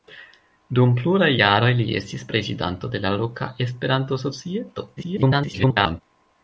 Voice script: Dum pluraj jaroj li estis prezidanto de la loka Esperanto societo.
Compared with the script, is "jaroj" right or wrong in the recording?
right